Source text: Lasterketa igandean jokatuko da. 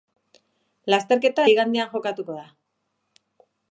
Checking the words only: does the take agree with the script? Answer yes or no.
yes